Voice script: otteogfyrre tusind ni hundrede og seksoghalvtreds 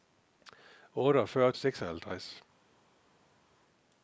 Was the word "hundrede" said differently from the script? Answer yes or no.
yes